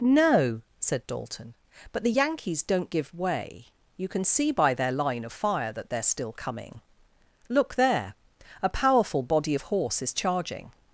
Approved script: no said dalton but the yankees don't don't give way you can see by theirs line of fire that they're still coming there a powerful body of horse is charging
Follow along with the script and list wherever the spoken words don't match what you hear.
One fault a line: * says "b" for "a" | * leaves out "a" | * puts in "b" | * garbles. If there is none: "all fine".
* leaves out "don't"
* says "their" for "theirs"
* puts in "look"